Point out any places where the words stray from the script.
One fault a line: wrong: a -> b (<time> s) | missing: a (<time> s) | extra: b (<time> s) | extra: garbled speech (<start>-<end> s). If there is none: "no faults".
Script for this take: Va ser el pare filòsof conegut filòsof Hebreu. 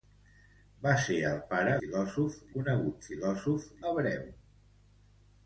no faults